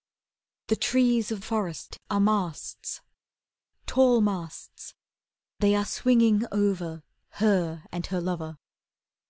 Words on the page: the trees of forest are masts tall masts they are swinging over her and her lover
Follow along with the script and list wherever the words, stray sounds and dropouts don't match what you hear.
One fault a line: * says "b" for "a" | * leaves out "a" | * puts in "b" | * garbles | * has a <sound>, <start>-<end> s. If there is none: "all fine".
all fine